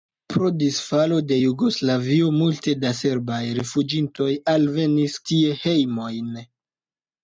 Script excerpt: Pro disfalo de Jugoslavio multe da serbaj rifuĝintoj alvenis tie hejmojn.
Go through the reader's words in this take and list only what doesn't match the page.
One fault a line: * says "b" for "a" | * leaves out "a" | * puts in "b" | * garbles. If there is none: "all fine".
all fine